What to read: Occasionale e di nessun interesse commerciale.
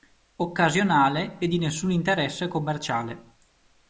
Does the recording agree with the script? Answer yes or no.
yes